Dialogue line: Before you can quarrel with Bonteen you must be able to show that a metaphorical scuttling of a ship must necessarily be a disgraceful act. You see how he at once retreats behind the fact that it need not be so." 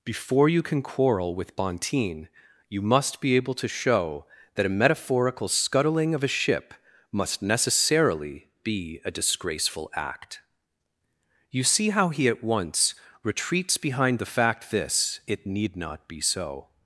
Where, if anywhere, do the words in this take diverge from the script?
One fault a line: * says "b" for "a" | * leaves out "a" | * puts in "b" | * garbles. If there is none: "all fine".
* says "this" for "that"